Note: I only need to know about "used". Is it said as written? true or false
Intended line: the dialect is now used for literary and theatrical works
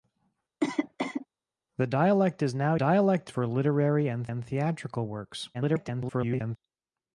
false